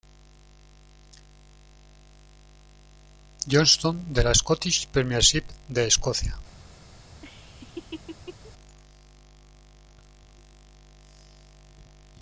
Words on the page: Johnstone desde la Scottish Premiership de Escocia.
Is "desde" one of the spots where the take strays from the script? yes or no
yes